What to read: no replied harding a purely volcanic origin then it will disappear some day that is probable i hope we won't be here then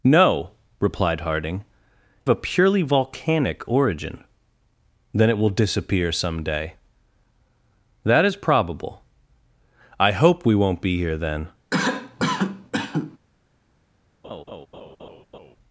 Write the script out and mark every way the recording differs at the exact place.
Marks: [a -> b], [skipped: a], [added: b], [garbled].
no replied harding a purely volcanic origin then it will disappear some day that is probable i hope we won't be here then